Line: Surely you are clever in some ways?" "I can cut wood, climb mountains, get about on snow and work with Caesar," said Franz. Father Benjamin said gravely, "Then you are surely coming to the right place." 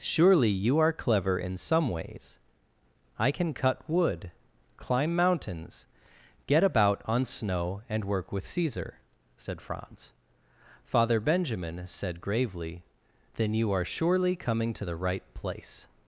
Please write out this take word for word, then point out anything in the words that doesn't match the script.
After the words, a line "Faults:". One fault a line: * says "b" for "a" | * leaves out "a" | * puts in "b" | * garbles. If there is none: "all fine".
Surely you are clever in some ways?" "I can cut wood, climb mountains, get about on snow and work with Caesar," said Franz. Father Benjamin said gravely, "Then you are surely coming to the right place."
Faults:
all fine